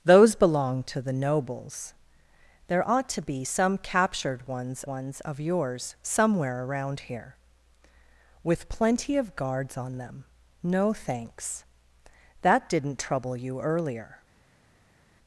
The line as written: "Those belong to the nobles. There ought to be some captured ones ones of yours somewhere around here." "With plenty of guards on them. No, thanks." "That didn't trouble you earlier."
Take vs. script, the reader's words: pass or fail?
pass